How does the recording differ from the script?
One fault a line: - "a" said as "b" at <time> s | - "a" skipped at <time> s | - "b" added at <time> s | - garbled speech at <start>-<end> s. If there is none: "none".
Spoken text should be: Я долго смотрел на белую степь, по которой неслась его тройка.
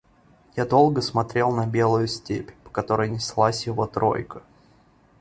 none